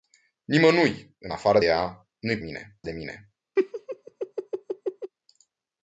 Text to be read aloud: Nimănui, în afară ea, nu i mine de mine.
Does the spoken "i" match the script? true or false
true